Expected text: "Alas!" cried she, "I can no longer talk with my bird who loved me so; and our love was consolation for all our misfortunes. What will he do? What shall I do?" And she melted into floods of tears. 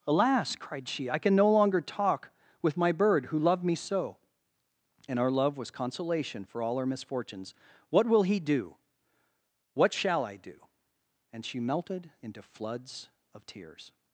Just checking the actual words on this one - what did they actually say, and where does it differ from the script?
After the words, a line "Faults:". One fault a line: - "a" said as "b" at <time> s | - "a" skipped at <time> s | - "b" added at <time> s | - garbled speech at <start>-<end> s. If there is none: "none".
"Alas!" cried she, "I can no longer talk with my bird who loved me so; and our love was consolation for all our misfortunes. What will he do? What shall I do?" And she melted into floods of tears.
Faults:
none